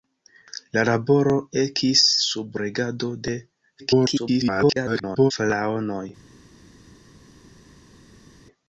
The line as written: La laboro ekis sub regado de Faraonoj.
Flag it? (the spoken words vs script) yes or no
yes